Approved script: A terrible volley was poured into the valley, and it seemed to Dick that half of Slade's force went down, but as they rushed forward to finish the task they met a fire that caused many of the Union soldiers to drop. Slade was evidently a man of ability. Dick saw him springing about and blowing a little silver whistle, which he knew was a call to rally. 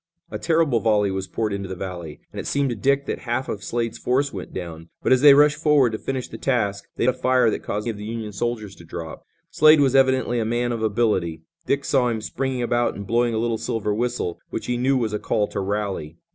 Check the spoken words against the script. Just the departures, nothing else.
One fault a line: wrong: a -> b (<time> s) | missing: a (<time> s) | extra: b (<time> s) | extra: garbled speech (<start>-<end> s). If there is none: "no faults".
missing: met (7.1 s)
missing: many (7.9 s)